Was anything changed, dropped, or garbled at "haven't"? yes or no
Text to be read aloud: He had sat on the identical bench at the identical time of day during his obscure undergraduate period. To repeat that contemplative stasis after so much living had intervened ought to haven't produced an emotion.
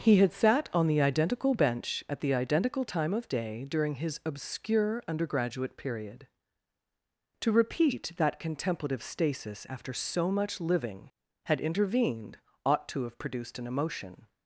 yes